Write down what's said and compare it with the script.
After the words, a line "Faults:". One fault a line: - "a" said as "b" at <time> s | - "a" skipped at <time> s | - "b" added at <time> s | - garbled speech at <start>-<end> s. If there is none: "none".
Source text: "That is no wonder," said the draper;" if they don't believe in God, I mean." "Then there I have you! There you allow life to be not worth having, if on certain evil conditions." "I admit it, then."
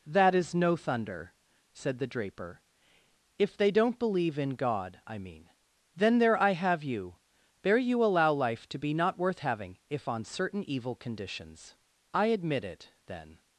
"That is no thunder," said the draper;" if they don't believe in God, I mean." "Then there I have you! There you allow life to be not worth having, if on certain evil conditions." "I admit it, then."
Faults:
- "wonder" said as "thunder" at 0.7 s